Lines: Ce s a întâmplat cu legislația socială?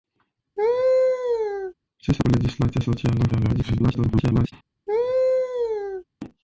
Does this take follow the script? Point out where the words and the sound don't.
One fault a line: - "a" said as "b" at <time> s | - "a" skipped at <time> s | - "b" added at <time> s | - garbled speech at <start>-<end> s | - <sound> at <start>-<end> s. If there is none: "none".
- laugh at 0.6-1.7 s
- "întâmplat" skipped at 2.2 s
- garbled speech at 3.3-4.5 s
- laugh at 4.9-6.0 s